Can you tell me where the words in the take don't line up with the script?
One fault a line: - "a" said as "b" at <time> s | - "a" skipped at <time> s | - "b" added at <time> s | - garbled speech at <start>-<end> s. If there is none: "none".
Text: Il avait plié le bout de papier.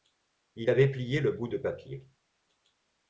none